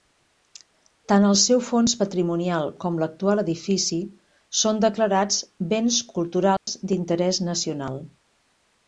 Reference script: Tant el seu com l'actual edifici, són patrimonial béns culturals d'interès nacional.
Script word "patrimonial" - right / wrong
wrong